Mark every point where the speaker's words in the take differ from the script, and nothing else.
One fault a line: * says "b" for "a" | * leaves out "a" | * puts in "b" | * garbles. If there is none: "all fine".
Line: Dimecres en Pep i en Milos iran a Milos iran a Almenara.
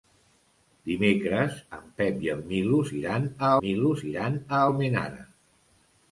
all fine